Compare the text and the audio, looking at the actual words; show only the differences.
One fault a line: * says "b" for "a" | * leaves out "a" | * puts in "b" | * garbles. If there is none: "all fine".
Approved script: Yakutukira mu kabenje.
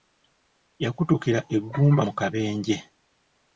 * puts in "eggumba"